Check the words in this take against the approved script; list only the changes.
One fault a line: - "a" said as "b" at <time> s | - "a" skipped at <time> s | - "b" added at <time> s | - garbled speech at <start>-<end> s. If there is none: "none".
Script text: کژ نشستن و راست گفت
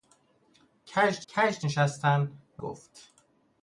- "کژ" added at 1.3 s
- "راست" skipped at 2.6 s